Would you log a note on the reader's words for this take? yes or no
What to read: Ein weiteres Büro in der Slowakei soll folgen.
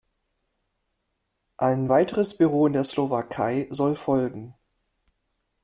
no